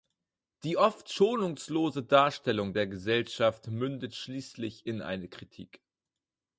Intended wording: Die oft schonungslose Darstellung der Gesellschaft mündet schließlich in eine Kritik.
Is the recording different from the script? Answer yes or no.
no